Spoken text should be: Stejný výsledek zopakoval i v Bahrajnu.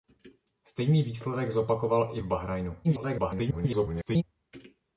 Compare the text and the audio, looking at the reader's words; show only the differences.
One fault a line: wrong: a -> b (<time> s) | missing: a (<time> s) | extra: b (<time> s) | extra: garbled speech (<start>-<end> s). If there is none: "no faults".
extra: garbled speech (2.8-4.2 s)